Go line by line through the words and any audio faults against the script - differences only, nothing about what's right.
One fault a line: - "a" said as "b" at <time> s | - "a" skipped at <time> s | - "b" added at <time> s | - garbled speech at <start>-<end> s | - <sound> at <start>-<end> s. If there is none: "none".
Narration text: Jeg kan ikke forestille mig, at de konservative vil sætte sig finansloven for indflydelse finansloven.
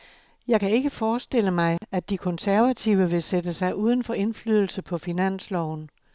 - dropout at 1.8-1.8 s
- "finansloven" said as "uden" at 3.8 s
- "på" added at 4.8 s